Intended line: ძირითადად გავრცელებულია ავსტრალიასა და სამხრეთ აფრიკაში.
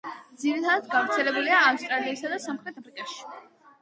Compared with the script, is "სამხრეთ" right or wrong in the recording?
right